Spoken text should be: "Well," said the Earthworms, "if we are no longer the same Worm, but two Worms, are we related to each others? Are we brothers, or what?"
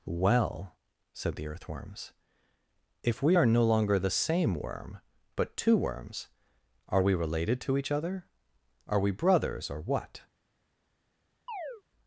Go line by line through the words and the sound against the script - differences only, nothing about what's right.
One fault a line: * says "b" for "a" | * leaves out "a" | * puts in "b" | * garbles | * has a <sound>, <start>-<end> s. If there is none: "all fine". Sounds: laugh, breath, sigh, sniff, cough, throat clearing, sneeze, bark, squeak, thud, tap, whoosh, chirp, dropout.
* says "other" for "others"
* has a chirp, 11.5-11.8 s